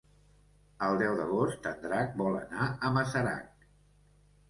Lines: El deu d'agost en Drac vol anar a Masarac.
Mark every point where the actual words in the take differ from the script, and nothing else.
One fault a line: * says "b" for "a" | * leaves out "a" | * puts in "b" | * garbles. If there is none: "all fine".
all fine